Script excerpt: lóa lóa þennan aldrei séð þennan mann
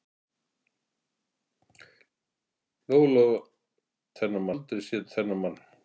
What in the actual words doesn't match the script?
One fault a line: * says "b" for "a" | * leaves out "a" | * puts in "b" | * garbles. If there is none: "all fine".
all fine